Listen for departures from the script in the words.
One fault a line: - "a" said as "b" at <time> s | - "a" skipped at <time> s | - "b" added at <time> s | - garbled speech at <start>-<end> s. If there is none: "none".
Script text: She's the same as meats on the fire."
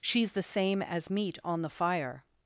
- "meats" said as "meat" at 1.1 s